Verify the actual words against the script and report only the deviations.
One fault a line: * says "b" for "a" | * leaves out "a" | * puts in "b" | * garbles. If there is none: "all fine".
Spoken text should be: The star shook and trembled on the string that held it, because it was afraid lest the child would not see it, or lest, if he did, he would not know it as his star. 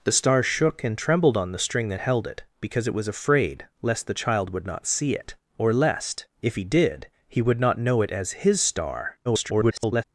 * garbles